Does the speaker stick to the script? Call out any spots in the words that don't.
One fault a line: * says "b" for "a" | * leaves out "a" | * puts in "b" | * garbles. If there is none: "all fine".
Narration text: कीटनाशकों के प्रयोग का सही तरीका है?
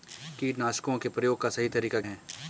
all fine